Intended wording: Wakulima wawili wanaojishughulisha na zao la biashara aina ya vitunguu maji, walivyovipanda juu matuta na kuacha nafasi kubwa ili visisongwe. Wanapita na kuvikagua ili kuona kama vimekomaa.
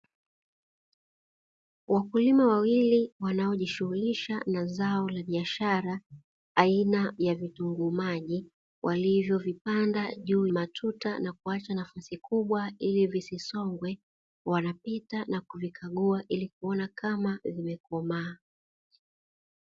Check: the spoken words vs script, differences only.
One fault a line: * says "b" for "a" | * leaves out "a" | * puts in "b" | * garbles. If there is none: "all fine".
all fine